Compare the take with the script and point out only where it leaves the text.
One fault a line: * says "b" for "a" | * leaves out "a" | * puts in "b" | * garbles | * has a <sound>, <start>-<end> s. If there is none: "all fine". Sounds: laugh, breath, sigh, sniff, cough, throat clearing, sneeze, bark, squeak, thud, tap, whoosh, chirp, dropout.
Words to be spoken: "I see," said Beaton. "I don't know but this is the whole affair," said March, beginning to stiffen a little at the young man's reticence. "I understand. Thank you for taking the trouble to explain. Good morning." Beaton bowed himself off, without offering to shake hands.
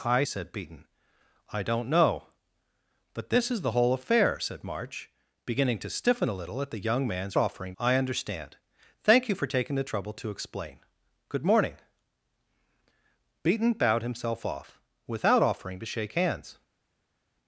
* leaves out "see"
* says "offering" for "reticence"